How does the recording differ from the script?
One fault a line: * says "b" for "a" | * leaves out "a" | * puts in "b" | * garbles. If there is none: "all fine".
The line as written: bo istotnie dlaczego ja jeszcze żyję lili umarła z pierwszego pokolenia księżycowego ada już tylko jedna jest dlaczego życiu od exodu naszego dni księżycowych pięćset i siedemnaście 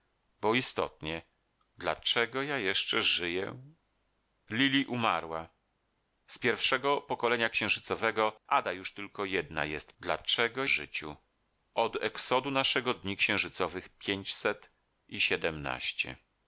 all fine